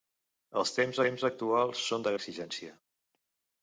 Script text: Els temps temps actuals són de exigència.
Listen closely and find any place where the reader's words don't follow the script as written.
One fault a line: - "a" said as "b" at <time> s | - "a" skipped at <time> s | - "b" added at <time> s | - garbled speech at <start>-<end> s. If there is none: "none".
none